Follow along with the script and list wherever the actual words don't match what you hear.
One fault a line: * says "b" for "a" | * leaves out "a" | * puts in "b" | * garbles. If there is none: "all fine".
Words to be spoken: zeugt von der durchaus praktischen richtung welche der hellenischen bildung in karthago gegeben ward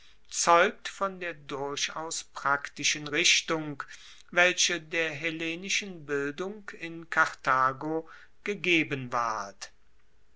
all fine